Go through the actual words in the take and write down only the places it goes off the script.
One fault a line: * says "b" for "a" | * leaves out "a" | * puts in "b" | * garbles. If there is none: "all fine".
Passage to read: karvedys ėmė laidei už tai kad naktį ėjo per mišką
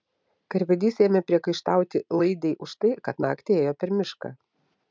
* puts in "priekaištauti"